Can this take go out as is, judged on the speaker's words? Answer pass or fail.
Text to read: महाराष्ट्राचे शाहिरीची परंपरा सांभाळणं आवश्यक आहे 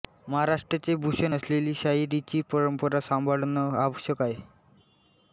fail